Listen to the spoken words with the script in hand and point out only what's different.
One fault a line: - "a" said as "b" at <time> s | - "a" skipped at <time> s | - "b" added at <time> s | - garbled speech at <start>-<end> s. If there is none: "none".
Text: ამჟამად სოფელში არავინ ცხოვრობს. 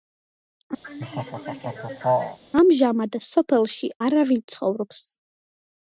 none